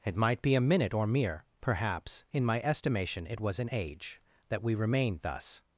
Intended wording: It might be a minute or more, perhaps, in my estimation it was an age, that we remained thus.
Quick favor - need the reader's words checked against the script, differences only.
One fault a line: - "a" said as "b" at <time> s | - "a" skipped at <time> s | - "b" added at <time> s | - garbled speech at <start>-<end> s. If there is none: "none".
- "more" said as "mere" at 1.1 s